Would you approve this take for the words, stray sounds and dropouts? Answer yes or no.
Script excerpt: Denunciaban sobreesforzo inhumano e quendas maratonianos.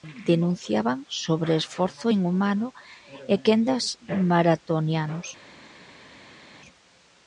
yes